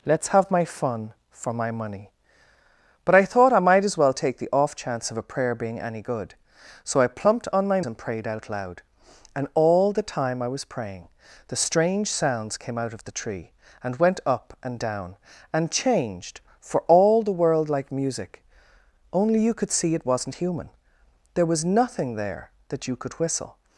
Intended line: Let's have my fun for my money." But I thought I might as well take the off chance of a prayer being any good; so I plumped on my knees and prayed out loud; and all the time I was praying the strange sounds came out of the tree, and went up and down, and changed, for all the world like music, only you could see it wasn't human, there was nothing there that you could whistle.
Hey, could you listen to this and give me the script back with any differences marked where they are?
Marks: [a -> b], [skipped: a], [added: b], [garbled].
Let's have my fun for my money." But I thought I might as well take the off chance of a prayer being any good; so I plumped on my [skipped: knees] and prayed out loud; and all the time I was praying the strange sounds came out of the tree, and went up and down, and changed, for all the world like music, only you could see it wasn't human, there was nothing there that you could whistle.